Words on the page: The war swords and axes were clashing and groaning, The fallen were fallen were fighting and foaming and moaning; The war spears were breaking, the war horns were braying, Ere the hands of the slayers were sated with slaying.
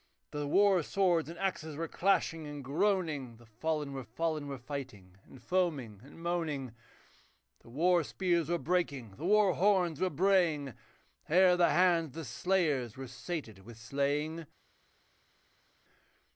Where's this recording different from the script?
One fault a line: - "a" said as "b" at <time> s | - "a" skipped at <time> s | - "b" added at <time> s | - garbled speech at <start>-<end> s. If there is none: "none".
none